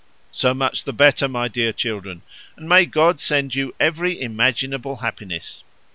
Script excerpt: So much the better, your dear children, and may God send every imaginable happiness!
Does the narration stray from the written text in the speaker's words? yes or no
yes